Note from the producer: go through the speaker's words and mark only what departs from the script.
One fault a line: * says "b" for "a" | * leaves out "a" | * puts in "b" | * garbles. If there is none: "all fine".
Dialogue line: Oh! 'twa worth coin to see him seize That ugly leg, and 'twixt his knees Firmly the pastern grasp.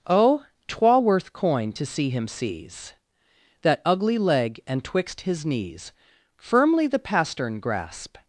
all fine